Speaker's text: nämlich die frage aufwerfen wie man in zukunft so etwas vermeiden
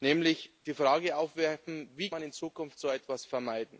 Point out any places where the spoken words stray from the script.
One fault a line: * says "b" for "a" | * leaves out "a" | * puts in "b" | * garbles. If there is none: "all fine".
all fine